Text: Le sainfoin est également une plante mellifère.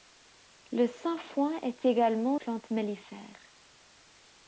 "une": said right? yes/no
no